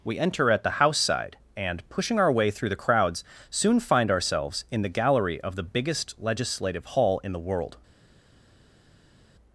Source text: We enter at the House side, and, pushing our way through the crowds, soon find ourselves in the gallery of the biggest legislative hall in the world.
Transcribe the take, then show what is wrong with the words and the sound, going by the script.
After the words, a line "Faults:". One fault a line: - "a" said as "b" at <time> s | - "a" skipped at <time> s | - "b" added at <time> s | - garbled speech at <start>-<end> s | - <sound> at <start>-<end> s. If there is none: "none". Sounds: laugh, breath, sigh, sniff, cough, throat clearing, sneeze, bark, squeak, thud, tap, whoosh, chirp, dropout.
We enter at the House side, and, pushing our way through the crowds, soon find ourselves in the gallery of the biggest legislative hall in the world.
Faults:
none